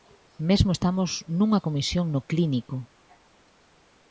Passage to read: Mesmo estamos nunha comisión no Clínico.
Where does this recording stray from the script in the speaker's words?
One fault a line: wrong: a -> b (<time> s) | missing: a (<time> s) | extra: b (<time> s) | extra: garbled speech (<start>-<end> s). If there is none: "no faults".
no faults